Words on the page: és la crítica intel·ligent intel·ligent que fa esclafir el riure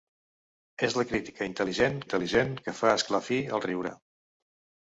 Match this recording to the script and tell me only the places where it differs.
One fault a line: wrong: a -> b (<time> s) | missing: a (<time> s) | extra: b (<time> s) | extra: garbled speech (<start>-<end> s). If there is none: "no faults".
no faults